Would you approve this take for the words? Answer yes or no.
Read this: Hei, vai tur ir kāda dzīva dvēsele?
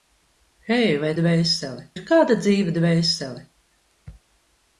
no